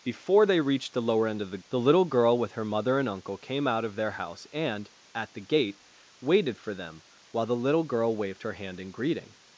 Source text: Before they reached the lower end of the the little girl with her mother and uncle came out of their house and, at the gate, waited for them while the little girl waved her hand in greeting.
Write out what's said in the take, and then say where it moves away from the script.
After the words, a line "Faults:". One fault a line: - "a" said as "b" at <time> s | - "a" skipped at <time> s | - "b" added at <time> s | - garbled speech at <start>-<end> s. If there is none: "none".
Before they reached the lower end of the the little girl with her mother and uncle came out of their house and, at the gate, waited for them while the little girl waved her hand in greeting.
Faults:
none